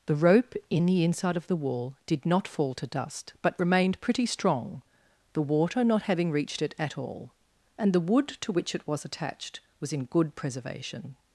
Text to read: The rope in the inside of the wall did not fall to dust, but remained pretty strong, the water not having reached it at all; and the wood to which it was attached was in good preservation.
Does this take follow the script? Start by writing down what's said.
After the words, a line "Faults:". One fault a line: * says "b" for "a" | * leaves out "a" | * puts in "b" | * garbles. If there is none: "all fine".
The rope in the inside of the wall did not fall to dust, but remained pretty strong, the water not having reached it at all; and the wood to which it was attached was in good preservation.
Faults:
all fine